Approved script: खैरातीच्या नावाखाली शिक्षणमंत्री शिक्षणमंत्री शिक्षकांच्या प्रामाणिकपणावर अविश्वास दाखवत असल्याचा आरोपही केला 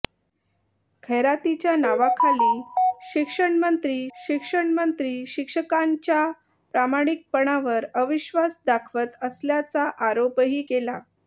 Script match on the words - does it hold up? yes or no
yes